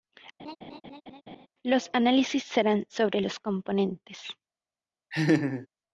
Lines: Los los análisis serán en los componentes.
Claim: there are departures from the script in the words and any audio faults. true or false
true